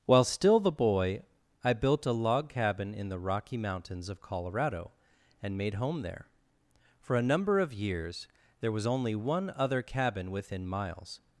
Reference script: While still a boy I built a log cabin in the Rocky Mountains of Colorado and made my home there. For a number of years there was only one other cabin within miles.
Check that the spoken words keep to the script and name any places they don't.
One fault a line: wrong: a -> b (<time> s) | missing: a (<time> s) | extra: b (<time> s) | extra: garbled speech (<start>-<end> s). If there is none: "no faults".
wrong: a -> the (0.6 s)
missing: my (5.8 s)